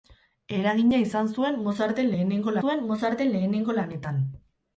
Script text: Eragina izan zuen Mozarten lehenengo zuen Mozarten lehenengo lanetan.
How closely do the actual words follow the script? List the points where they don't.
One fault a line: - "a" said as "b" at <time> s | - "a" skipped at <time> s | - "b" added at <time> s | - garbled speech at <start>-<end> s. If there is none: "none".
none